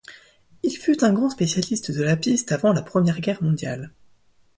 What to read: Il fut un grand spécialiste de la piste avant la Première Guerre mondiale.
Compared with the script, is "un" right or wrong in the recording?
right